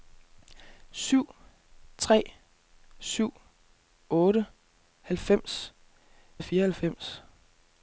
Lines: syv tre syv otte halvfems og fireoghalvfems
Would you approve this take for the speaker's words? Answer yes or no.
yes